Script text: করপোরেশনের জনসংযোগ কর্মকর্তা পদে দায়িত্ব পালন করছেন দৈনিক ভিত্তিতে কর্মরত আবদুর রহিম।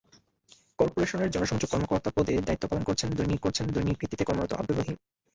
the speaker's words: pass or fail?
fail